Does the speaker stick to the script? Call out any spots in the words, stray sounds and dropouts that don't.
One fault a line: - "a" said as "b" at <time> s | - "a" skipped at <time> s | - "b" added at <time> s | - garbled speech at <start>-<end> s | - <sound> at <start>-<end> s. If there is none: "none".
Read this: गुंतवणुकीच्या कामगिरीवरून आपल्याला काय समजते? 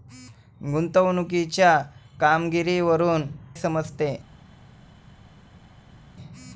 - "आपल्याला काय" skipped at 3.2 s